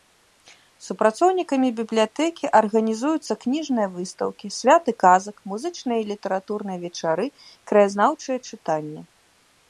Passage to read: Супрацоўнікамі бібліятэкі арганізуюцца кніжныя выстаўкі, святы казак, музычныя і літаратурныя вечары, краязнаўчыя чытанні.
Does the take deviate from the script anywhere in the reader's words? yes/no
no